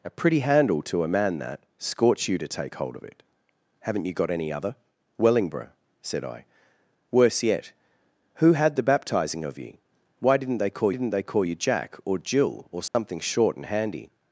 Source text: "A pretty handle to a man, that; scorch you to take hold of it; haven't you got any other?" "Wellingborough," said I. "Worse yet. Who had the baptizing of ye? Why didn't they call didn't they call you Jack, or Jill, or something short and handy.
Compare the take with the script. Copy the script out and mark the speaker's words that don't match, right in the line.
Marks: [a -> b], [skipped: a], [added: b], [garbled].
"A pretty handle to a man, that; scorch you to take hold of it; haven't you got any other?" "Wellingborough," said I. "Worse yet. Who had the baptizing of ye? Why didn't they call didn't they call you Jack, or Jill, or something short and handy.